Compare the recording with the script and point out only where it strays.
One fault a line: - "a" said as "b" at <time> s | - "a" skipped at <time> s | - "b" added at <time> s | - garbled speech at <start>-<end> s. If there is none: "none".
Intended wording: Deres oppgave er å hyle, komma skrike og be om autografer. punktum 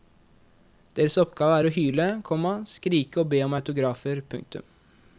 none